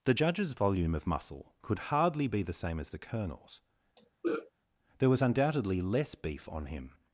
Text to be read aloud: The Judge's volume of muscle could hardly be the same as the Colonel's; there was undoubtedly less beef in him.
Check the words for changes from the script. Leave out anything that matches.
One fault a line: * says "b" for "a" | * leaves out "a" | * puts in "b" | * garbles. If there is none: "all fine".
* says "on" for "in"